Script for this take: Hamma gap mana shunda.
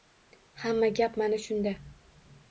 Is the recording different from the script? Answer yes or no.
no